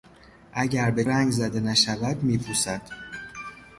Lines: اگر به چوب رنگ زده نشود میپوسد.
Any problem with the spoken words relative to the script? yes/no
yes